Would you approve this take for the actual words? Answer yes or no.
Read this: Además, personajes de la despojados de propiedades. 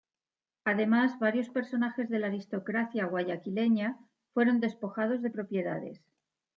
no